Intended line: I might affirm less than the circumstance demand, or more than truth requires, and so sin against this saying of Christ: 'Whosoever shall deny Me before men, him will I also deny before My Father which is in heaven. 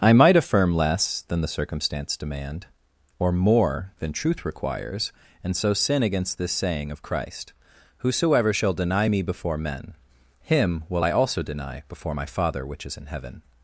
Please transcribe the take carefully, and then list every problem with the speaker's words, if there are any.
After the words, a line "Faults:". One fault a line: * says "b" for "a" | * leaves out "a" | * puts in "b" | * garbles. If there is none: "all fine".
I might affirm less than the circumstance demand, or more than truth requires, and so sin against this saying of Christ: 'Whosoever shall deny Me before men, him will I also deny before My Father which is in heaven.
Faults:
all fine